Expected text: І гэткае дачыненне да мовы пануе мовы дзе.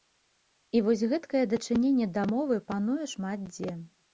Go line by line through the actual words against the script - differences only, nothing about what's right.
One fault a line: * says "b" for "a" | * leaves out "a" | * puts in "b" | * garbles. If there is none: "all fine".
* puts in "вось"
* says "шмат" for "мовы"